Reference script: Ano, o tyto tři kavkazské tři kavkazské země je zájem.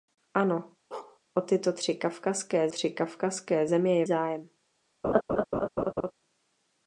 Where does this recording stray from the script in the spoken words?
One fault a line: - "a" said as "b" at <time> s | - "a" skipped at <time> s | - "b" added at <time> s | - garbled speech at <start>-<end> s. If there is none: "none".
none